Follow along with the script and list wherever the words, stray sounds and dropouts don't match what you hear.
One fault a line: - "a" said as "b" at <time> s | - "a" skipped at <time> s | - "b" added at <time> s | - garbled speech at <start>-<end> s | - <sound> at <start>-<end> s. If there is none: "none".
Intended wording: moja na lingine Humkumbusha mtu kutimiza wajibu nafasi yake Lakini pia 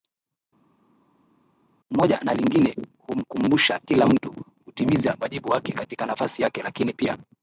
- "kila" added at 3.8 s
- "wake katika" added at 5.5 s